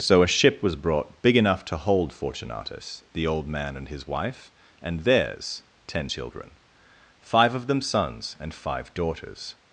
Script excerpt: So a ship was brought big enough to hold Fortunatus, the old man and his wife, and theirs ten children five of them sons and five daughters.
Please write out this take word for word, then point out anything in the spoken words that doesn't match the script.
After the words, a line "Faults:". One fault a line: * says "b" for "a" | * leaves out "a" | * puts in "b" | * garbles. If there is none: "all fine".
So a ship was brought big enough to hold Fortunatus, the old man and his wife, and theirs ten children five of them sons and five daughters.
Faults:
all fine